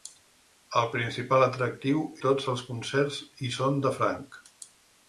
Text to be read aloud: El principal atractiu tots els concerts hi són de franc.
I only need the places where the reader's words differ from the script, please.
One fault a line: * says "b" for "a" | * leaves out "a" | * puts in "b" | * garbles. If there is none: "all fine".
all fine